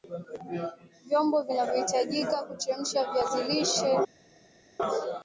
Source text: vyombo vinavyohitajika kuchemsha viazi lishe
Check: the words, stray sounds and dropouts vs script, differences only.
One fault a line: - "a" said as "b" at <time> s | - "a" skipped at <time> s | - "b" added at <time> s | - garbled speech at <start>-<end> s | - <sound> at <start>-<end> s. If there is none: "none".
none